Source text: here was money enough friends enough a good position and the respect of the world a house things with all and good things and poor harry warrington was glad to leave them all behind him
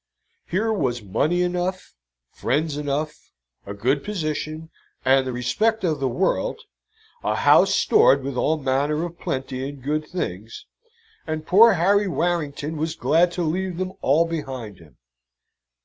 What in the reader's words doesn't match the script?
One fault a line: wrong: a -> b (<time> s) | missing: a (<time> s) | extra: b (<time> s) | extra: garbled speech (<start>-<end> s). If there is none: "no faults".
wrong: things -> stored (7.7 s)
extra: manner of plenty (8.6 s)